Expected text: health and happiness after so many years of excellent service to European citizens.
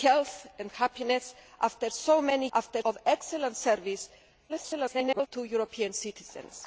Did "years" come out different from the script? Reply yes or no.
yes